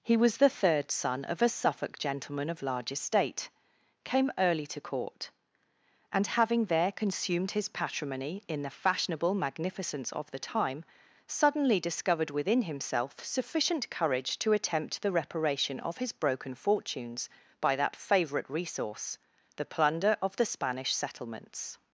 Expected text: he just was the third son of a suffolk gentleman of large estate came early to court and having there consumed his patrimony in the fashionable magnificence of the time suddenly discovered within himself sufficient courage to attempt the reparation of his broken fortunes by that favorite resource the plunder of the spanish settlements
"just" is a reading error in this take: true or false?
true